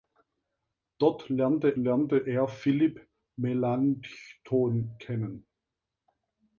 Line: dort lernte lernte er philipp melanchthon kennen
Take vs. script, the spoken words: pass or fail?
pass